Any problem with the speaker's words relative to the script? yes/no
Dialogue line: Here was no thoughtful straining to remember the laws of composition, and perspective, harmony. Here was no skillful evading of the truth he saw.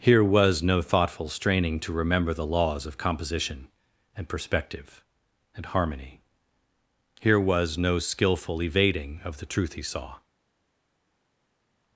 yes